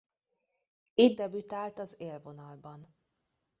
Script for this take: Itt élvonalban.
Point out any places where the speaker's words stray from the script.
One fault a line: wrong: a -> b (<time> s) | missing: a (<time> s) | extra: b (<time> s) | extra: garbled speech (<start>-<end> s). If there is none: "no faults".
extra: debütált az (1.2 s)